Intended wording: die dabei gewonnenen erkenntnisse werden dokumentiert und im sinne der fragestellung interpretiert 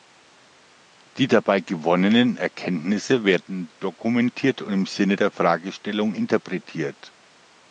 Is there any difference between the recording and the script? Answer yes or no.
no